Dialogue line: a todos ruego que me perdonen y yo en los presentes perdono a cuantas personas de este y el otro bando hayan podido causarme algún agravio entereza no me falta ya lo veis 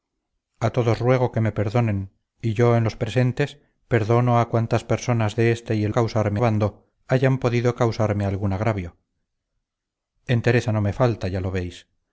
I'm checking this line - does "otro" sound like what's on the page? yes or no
no